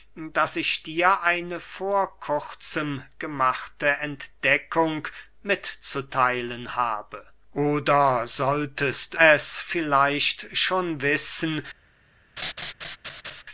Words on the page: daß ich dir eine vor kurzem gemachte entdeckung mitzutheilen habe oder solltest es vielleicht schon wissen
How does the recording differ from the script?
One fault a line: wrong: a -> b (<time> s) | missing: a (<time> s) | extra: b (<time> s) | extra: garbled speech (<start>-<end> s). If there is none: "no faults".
no faults